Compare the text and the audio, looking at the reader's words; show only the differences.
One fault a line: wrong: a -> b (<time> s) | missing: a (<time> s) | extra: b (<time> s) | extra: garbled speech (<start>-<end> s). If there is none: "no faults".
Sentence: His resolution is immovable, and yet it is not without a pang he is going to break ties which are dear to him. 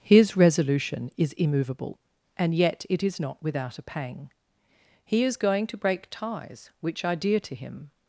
no faults